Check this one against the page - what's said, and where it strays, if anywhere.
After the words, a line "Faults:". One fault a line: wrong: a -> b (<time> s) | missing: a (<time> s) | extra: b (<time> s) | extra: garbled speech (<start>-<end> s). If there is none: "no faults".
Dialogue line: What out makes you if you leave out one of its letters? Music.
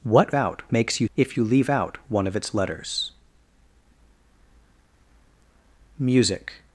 What out makes you if you leave out one of its letters? Music.
Faults:
no faults